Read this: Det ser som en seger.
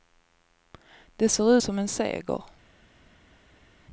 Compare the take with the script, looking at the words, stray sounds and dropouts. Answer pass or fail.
pass